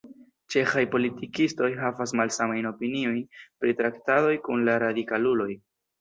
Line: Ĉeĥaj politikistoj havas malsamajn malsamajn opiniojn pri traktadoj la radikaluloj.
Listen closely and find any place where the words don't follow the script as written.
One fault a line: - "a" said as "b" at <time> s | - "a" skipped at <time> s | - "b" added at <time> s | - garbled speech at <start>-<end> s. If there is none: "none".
- "malsamajn" skipped at 2.7 s
- "kun" added at 4.4 s